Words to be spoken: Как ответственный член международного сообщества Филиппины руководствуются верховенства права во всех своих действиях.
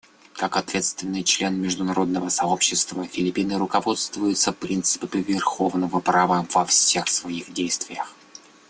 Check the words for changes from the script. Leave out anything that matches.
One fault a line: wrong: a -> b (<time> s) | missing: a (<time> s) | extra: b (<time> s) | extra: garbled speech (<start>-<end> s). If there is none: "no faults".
extra: принципами (4.5 s)